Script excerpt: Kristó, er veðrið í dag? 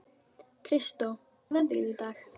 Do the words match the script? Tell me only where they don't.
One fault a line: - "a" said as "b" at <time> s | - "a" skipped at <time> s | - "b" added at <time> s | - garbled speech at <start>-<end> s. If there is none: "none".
none